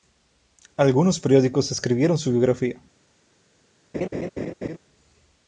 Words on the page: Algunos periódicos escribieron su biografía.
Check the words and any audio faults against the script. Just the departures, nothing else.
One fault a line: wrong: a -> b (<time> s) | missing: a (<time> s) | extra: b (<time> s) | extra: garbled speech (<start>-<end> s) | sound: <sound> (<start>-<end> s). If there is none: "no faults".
sound: laugh (3.9-4.8 s)